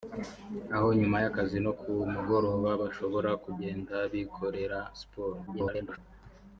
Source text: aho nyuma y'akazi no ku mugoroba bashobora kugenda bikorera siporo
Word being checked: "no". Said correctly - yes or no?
yes